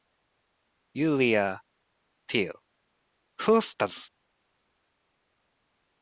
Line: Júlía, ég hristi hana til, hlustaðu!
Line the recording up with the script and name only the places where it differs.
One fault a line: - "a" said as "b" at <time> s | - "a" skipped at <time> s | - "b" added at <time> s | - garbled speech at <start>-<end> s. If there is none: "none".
- "ég hristi hana" skipped at 1.4 s